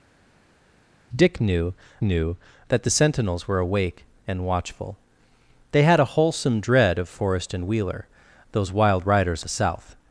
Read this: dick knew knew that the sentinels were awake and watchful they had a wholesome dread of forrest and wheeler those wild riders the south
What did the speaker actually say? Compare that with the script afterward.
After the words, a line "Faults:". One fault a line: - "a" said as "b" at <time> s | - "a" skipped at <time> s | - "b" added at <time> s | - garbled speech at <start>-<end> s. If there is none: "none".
dick knew knew that the sentinels were awake and watchful they had a wholesome dread of forrest and wheeler those wild riders the south
Faults:
none